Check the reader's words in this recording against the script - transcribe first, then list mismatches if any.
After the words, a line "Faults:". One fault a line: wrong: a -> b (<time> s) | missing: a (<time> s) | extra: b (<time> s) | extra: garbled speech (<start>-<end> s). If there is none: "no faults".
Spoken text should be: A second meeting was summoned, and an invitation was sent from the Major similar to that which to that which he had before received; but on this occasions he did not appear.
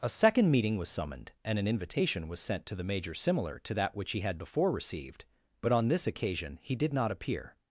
A second meeting was summoned, and an invitation was sent to the Major similar to that which he had before received; but on this occasion he did not appear.
Faults:
wrong: from -> to (2.6 s)
missing: to that which (4.1 s)
wrong: occasions -> occasion (6.1 s)